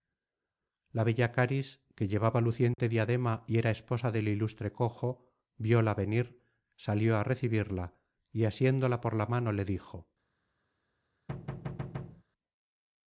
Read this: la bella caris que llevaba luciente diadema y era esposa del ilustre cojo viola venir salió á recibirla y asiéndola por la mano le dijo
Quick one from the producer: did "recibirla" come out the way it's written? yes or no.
yes